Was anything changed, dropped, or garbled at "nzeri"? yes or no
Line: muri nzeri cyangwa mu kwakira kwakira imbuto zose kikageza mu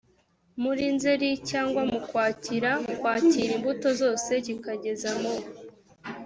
no